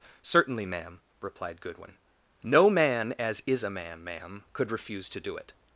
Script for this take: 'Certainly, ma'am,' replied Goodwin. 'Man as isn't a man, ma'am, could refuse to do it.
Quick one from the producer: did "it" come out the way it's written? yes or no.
yes